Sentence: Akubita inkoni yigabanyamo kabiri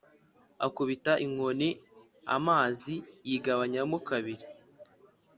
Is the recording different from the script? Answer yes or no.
yes